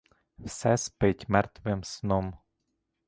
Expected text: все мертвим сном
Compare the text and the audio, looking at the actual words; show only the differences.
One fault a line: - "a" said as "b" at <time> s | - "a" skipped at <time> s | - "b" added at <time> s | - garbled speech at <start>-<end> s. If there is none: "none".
- "спить" added at 0.8 s